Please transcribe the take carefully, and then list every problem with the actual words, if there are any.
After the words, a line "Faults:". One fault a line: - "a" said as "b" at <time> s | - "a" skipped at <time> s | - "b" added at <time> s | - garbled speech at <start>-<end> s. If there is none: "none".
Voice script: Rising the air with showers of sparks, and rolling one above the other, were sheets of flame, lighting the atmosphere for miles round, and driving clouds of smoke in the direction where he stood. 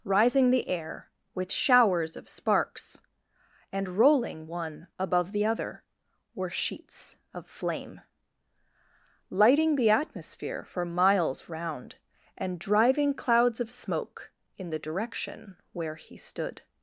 Rising the air with showers of sparks, and rolling one above the other, were sheets of flame, lighting the atmosphere for miles round, and driving clouds of smoke in the direction where he stood.
Faults:
none